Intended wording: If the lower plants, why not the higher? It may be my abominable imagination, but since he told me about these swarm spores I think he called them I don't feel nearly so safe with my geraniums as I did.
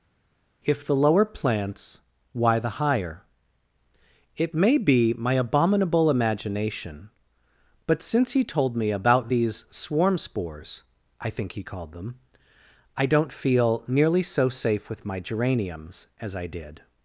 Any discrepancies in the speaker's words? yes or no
yes